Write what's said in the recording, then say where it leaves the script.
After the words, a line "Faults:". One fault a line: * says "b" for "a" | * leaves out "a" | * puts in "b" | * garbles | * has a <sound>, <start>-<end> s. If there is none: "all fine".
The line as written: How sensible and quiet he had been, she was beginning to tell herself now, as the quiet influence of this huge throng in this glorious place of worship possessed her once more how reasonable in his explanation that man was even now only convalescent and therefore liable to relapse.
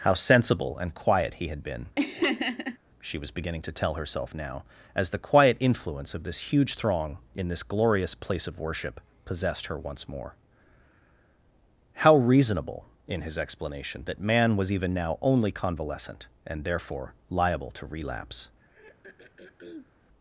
How sensible and quiet he had been, she was beginning to tell herself now, as the quiet influence of this huge throng in this glorious place of worship possessed her once more how reasonable in his explanation that man was even now only convalescent and therefore liable to relapse.
Faults:
* has a laugh, 2.0-2.8 s
* has a throat clearing, 18.6-19.9 s